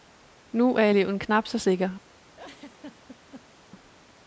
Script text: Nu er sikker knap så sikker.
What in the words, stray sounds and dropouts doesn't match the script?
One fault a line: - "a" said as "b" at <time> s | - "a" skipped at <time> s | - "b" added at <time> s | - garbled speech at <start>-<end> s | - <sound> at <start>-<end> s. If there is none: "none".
- "sikker" said as "eleven" at 0.9 s
- laugh at 2.3-3.6 s